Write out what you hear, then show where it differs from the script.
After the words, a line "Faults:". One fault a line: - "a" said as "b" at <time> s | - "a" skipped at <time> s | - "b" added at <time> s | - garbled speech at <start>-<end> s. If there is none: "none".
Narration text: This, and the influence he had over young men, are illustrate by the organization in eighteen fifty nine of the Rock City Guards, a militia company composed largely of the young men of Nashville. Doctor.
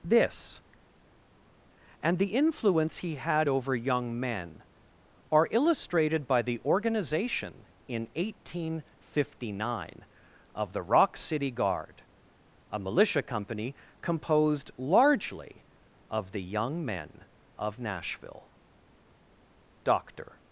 This, and the influence he had over young men, are illustrated by the organization in eighteen fifty nine of the Rock City Guard, a militia company composed largely of the young men of Nashville. Doctor.
Faults:
- "illustrate" said as "illustrated" at 5.5 s
- "Guards" said as "Guard" at 11.5 s